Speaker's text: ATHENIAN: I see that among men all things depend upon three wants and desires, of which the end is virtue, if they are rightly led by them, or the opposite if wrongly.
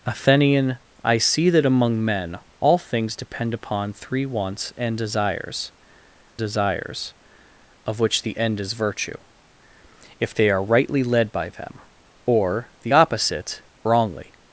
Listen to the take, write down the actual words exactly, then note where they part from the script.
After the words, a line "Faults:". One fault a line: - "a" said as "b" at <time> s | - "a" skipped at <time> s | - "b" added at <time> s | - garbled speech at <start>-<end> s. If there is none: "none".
ATHENIAN: I see that among men all things depend upon three wants and desires desires, of which the end is virtue, if they are rightly led by them, or the opposite wrongly.
Faults:
- "desires" added at 6.4 s
- "if" skipped at 13.6 s